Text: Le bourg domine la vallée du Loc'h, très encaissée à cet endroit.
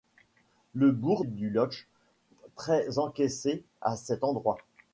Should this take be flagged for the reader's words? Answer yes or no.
yes